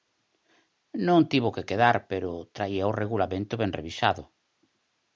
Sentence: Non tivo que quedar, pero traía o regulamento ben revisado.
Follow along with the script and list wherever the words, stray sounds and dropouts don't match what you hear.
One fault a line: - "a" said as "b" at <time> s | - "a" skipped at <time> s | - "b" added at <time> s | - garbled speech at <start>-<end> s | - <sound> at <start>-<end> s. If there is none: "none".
none